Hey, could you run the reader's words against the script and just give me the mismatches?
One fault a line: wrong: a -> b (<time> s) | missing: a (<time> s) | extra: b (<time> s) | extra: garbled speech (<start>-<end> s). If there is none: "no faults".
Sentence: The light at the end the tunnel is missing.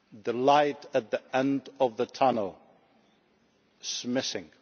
extra: of (1.8 s)